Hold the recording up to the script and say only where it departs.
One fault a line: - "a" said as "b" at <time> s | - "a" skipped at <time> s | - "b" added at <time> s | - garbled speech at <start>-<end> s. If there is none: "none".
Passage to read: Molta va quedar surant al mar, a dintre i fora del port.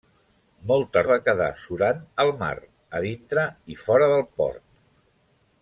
none